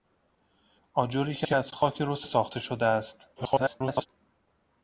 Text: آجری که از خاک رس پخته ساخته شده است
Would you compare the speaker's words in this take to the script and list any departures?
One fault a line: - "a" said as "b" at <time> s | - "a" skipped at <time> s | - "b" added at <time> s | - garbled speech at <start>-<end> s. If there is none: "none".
- "که" added at 1.4 s
- "پخته" skipped at 2.3 s
- garbled speech at 3.4-4.1 s